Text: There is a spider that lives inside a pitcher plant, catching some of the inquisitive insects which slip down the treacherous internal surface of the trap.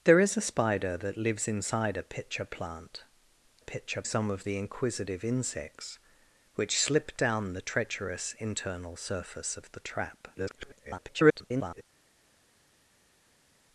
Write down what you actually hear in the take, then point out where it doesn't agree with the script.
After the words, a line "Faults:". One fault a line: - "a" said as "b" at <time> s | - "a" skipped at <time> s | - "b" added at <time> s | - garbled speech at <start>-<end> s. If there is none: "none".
There is a spider that lives inside a pitcher plant, pitcher some of the inquisitive insects which slip down the treacherous internal surface of the trap. [garbled]
Faults:
- "catching" said as "pitcher" at 3.6 s
- garbled speech at 10.3-11.8 s